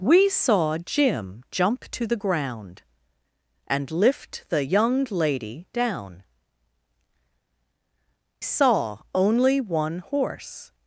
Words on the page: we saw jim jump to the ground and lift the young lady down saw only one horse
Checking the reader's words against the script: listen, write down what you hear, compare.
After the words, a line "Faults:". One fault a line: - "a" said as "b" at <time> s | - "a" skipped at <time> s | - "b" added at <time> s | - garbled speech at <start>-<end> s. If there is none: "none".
we saw jim jump to the ground and lift the young lady down saw only one horse
Faults:
none